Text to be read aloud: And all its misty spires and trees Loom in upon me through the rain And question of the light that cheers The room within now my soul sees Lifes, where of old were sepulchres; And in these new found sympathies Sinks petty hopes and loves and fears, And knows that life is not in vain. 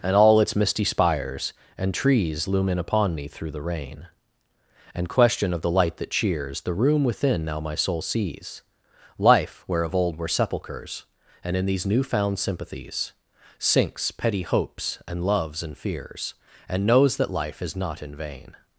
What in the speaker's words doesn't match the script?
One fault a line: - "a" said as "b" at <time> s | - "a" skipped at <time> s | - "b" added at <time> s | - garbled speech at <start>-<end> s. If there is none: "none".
- "Lifes" said as "Life" at 9.2 s